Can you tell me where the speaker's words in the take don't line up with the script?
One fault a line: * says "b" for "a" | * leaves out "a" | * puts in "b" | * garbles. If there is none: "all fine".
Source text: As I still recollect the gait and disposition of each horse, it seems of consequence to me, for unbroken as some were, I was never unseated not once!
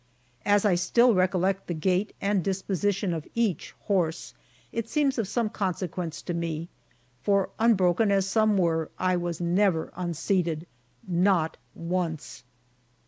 * puts in "some"